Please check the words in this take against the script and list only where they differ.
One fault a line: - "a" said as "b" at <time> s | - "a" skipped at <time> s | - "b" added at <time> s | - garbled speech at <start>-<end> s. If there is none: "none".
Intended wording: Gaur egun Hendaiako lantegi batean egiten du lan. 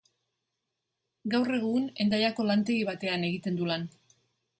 none